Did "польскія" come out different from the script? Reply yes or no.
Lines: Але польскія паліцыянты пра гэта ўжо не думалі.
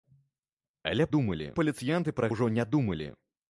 yes